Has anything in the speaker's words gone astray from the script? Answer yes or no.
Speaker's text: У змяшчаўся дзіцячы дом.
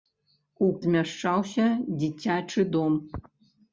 no